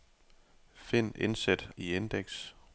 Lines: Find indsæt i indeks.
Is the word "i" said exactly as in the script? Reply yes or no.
yes